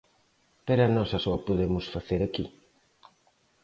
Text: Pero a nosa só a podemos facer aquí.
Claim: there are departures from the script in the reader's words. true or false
false